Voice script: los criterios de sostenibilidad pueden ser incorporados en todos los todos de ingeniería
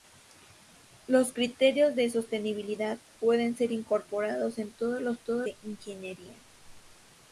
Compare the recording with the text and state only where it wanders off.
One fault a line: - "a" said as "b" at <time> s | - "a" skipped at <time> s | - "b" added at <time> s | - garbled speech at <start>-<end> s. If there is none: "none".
none